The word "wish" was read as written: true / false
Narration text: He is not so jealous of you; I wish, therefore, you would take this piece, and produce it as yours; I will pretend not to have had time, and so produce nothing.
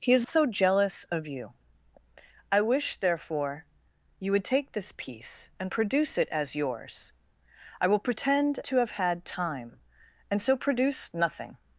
true